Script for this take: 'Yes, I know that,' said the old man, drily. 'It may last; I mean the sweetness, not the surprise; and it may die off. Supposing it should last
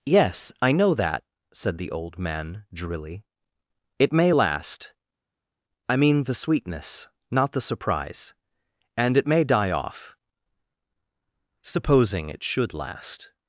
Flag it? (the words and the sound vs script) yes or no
no